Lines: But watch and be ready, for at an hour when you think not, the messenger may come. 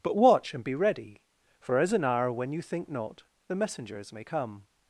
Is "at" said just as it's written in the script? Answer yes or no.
no